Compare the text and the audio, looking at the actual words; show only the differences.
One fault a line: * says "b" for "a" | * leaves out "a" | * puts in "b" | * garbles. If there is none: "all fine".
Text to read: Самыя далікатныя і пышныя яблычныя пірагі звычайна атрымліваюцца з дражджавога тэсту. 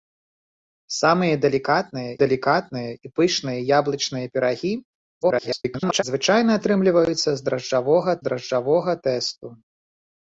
* puts in "далікатныя"
* garbles
* puts in "дражджавога"